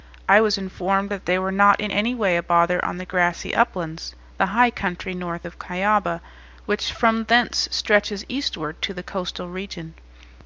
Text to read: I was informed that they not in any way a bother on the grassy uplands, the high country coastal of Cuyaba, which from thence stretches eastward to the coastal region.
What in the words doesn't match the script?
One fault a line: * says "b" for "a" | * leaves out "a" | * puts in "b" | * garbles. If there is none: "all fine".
* puts in "were"
* says "north" for "coastal"